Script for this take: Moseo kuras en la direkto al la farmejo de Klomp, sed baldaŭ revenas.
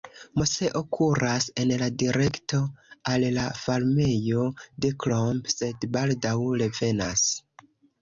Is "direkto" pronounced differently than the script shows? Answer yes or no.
no